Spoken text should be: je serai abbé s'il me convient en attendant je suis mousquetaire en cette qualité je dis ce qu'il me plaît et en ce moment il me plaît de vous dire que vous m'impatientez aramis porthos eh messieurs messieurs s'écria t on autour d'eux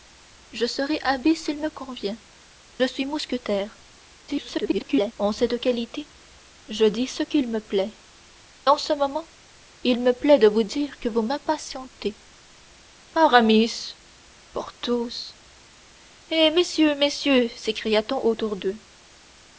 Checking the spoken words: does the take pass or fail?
fail